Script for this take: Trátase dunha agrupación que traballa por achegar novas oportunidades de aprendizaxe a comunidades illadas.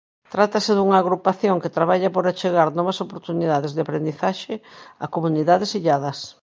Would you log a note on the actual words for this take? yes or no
no